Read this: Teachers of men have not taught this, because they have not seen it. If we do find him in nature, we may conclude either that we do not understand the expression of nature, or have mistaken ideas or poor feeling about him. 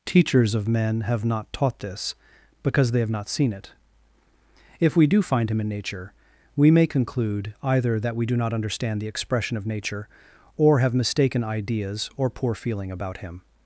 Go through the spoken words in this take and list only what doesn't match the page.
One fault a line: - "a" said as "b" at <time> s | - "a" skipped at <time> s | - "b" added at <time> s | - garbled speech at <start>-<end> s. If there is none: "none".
none